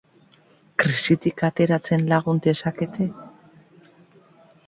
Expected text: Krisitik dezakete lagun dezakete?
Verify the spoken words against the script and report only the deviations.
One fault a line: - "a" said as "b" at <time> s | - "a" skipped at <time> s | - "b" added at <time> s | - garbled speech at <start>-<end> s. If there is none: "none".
- "dezakete" said as "ateratzen" at 1.5 s